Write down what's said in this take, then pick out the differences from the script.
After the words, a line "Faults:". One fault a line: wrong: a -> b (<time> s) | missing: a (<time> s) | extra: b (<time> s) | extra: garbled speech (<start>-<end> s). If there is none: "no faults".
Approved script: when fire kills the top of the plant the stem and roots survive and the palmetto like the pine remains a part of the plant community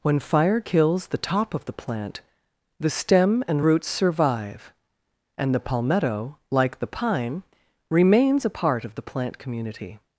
when fire kills the top of the plant the stem and roots survive and the palmetto like the pine remains a part of the plant community
Faults:
no faults